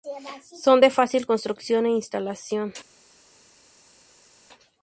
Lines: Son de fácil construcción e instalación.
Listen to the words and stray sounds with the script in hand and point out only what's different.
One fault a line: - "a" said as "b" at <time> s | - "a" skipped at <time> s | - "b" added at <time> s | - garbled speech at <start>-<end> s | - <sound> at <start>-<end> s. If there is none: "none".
none